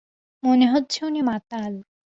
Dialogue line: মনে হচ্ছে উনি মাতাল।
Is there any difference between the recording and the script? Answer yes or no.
no